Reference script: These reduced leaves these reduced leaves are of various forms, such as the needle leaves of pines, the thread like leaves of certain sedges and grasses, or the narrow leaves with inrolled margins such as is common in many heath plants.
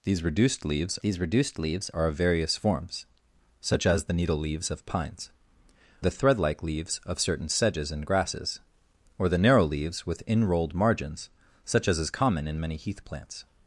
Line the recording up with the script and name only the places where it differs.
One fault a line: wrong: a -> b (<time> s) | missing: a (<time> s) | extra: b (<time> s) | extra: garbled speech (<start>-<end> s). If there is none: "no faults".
no faults